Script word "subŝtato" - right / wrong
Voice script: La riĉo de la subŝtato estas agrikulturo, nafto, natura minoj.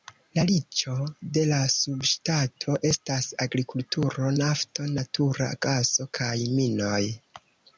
right